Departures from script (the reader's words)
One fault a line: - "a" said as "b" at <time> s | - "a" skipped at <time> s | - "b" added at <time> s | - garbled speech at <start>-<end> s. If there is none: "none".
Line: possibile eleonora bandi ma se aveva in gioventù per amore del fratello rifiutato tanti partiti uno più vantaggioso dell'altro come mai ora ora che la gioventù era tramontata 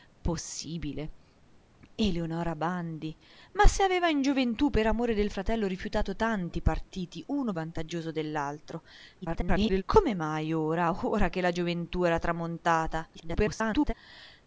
- "più" skipped at 7.5 s
- garbled speech at 9.2-9.8 s
- garbled speech at 13.1-13.9 s